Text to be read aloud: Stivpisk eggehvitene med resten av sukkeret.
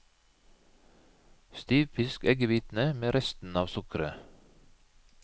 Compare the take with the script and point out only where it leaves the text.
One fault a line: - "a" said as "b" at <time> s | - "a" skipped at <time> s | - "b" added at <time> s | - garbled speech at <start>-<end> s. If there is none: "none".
none